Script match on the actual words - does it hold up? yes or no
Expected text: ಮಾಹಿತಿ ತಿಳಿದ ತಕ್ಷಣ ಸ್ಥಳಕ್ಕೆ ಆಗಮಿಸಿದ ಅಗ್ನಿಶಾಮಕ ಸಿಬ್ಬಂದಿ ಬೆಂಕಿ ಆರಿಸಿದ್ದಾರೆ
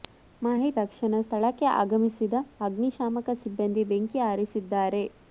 no